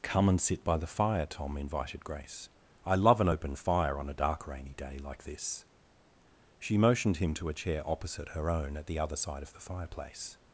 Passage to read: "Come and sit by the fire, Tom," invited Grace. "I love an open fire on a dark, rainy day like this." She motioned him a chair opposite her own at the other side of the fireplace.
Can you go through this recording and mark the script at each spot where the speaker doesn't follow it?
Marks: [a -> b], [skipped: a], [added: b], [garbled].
"Come and sit by the fire, Tom," invited Grace. "I love an open fire on a dark, rainy day like this." She motioned him [added: to] a chair opposite her own at the other side of the fireplace.